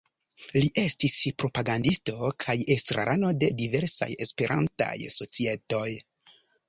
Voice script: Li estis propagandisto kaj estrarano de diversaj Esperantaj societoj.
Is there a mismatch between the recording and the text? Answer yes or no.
no